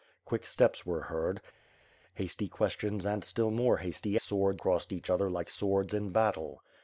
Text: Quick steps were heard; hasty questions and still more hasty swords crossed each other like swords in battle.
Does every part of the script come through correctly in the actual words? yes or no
yes